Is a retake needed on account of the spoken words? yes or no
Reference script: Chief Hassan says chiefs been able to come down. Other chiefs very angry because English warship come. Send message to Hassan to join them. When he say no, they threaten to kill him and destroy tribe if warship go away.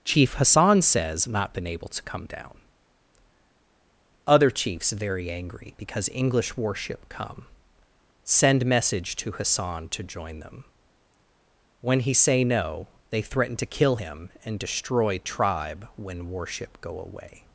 yes